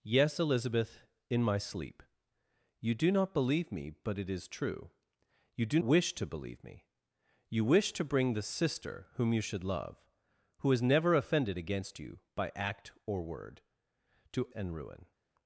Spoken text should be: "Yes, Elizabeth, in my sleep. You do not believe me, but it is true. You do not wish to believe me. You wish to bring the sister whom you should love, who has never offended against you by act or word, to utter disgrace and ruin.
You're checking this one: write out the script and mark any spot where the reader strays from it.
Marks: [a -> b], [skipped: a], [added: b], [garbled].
"Yes, Elizabeth, in my sleep. You do not believe me, but it is true. You do [skipped: not] wish to believe me. You wish to bring the sister whom you should love, who has never offended against you by act or word, to [skipped: utter disgrace] and ruin.